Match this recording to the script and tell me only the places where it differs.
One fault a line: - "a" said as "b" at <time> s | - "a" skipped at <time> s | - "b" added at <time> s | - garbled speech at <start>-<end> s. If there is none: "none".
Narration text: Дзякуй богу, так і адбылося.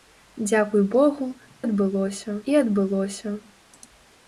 - "так" said as "адбылося" at 1.6 s